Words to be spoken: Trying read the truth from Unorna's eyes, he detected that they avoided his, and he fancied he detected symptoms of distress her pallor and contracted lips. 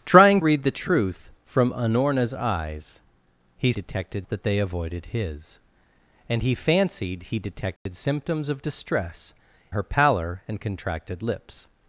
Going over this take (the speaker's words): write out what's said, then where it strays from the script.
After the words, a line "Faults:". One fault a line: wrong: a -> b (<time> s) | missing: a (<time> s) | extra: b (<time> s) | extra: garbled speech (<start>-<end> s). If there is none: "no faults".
Trying read the truth from Unorna's eyes, he detected that they avoided his, and he fancied he detected symptoms of distress her pallor and contracted lips.
Faults:
no faults